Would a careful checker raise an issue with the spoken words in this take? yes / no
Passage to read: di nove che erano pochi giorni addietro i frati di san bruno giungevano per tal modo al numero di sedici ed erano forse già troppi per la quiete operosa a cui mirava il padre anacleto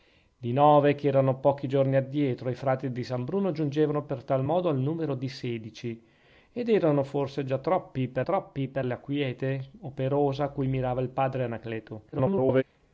yes